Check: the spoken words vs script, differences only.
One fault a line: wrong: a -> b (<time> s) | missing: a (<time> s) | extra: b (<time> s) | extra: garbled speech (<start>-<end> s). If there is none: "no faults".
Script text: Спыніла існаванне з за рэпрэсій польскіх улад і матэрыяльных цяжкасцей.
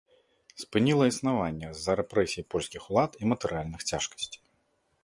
no faults